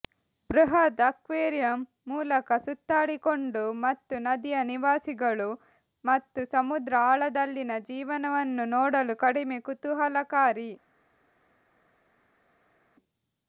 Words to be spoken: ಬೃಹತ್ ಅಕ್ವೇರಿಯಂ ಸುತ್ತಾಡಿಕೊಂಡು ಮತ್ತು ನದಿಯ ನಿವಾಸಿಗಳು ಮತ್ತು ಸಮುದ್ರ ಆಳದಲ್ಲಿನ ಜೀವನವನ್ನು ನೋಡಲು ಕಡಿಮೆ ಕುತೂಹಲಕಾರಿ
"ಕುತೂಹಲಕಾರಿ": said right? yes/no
yes